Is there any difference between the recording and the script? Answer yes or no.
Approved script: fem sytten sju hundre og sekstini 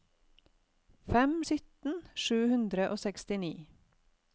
no